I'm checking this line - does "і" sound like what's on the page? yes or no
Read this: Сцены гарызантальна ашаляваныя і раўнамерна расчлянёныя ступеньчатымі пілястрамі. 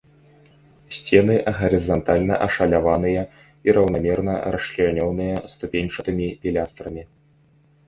yes